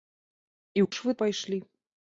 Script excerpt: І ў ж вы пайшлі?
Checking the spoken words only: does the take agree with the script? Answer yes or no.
yes